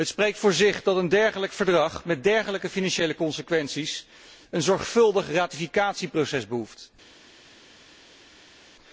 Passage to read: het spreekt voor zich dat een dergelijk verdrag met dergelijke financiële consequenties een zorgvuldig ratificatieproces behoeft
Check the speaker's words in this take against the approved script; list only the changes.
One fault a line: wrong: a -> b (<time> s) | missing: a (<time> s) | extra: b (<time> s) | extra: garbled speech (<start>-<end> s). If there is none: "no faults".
no faults